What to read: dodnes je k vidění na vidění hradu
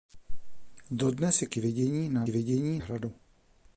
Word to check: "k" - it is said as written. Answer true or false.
true